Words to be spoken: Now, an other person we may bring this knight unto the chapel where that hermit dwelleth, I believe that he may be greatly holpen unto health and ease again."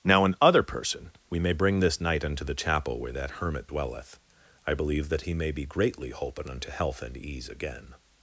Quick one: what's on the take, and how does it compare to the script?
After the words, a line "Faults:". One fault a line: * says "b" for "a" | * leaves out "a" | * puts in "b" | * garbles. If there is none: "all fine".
Now, an other person we may bring this knight unto the chapel where that hermit dwelleth, I believe that he may be greatly holpen unto health and ease again."
Faults:
all fine